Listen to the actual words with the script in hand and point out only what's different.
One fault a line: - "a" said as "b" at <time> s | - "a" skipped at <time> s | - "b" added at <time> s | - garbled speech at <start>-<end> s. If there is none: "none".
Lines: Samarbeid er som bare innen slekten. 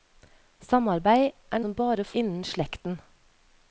none